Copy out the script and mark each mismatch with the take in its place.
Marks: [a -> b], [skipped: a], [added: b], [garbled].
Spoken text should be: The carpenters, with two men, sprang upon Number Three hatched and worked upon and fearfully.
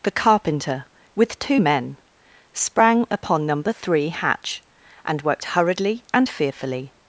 The [carpenters, -> carpenter] with two men, sprang upon Number Three [hatched -> hatch] and worked [upon -> hurriedly] and fearfully.